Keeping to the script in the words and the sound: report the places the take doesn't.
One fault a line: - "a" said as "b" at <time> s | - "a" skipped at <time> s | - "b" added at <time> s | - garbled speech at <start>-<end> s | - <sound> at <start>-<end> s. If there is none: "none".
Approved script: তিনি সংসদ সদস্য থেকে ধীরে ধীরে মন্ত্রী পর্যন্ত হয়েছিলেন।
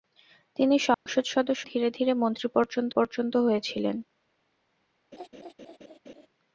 - dropout at 0.9-1.1 s
- "থেকে" skipped at 1.6 s
- "পর্যন্ত" added at 2.9 s
- laugh at 5.1-6.3 s